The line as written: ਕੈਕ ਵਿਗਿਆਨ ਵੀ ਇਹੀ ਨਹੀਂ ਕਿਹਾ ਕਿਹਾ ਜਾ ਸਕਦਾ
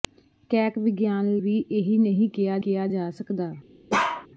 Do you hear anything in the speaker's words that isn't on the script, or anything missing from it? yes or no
no